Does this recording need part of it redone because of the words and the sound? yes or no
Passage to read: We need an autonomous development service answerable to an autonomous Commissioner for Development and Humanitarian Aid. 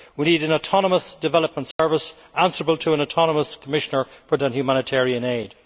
yes